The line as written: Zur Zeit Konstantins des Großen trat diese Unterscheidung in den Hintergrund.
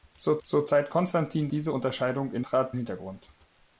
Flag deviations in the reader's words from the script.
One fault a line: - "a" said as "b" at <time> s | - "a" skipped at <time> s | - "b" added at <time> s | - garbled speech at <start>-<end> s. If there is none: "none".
- "zur" added at 0.4 s
- "des Großen trat" skipped at 1.5 s
- "den" said as "trat" at 2.4 s